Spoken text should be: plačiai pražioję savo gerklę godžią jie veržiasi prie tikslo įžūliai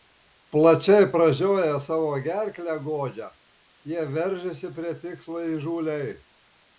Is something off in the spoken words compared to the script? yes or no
no